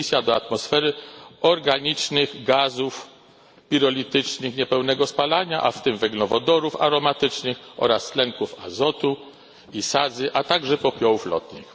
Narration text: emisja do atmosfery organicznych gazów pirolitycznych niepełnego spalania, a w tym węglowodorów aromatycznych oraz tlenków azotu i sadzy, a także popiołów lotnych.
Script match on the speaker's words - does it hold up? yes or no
yes